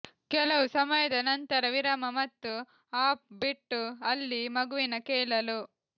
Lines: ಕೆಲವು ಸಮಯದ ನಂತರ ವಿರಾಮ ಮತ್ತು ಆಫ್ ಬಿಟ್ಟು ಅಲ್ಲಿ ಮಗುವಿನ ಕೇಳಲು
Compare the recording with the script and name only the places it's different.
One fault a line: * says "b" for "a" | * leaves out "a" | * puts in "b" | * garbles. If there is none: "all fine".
all fine